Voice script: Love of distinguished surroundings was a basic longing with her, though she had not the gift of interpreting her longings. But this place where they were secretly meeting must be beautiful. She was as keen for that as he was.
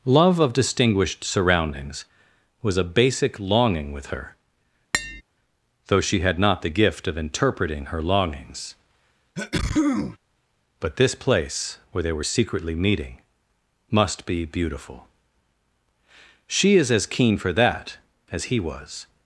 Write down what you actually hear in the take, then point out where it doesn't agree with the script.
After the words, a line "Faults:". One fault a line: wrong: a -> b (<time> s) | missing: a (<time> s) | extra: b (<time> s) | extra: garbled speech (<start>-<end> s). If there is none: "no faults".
Love of distinguished surroundings was a basic longing with her, though she had not the gift of interpreting her longings. But this place where they were secretly meeting must be beautiful. She is as keen for that as he was.
Faults:
wrong: was -> is (16.7 s)